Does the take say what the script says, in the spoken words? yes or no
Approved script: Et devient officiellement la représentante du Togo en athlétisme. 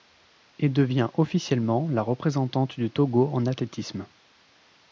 yes